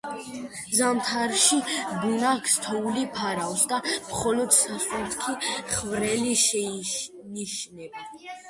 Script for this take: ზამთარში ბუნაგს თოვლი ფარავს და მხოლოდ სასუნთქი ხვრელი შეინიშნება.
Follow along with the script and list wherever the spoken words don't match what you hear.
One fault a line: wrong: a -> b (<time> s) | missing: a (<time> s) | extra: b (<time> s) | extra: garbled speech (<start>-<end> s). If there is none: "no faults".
no faults